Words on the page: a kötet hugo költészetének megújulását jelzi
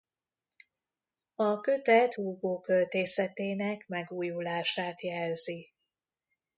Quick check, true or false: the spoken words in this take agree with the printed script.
true